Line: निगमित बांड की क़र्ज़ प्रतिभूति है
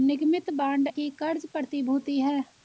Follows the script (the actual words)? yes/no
yes